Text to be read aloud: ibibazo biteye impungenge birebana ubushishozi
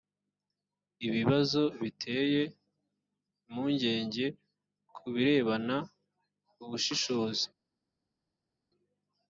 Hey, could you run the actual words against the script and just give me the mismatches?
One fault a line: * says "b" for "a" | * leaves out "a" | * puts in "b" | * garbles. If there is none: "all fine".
* puts in "ku"